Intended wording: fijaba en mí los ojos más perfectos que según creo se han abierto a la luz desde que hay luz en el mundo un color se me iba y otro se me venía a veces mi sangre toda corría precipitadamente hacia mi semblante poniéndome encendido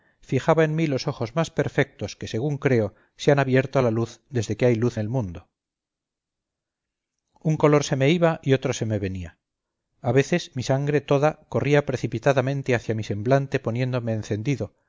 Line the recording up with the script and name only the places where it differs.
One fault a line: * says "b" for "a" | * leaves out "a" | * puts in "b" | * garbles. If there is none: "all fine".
* leaves out "en"